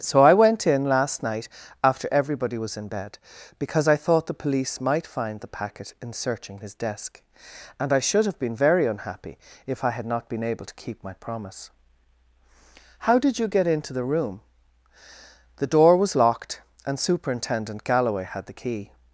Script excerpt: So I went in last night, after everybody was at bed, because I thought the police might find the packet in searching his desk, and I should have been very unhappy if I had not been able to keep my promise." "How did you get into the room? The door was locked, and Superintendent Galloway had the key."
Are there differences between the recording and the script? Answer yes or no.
yes